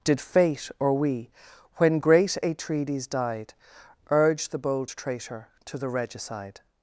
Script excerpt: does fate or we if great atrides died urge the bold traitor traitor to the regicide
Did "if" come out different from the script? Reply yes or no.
yes